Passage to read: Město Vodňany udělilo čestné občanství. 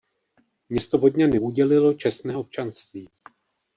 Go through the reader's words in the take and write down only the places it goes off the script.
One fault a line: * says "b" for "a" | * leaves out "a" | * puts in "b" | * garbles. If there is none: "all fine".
all fine